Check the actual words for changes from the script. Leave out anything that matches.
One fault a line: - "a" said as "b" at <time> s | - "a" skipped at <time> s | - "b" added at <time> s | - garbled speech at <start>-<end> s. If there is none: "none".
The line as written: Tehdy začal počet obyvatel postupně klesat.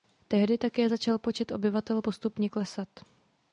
- "také" added at 0.6 s